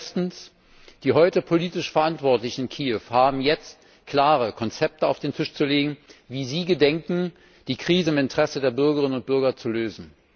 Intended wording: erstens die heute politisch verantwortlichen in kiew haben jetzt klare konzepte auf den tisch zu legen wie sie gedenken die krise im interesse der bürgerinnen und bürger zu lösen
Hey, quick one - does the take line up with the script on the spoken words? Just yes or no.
yes